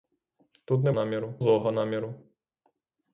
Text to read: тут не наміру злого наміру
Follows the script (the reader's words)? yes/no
yes